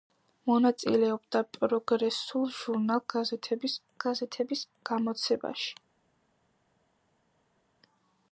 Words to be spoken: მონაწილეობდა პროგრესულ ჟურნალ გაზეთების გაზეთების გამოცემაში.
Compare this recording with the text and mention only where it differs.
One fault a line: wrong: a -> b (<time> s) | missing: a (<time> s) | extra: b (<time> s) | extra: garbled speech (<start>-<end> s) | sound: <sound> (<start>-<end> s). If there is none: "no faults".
no faults